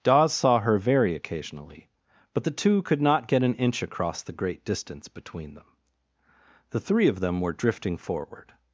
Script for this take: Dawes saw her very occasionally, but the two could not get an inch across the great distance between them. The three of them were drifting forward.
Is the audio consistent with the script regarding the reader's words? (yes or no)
yes